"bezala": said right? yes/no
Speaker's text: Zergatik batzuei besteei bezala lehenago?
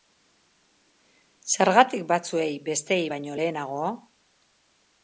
no